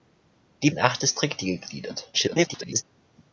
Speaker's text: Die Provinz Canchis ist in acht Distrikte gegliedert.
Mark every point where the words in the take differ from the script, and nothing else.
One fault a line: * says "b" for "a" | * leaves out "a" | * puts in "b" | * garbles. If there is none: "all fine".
* leaves out "Provinz Canchis ist"
* garbles